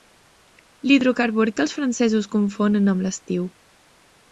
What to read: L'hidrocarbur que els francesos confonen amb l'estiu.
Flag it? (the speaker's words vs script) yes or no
no